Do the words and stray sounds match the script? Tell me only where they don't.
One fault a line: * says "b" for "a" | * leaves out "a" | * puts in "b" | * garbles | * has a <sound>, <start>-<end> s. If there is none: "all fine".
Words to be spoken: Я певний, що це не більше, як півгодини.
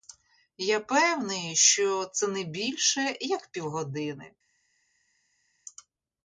all fine